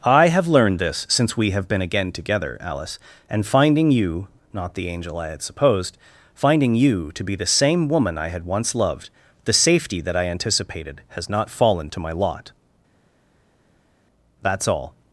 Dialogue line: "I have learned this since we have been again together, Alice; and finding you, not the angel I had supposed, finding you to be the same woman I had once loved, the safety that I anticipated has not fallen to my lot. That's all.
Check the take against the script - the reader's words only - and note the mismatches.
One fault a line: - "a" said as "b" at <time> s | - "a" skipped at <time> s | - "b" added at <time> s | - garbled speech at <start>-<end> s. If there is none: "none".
none